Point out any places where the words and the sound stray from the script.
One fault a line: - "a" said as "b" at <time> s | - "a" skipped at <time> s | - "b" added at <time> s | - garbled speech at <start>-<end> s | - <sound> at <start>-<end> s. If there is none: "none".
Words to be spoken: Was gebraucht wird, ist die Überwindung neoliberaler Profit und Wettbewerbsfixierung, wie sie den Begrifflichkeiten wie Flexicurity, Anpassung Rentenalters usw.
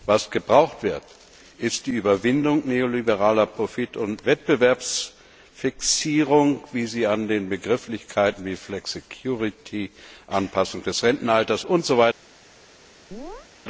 - "an" added at 7.1 s
- "des" added at 10.8 s
- chirp at 13.1-13.5 s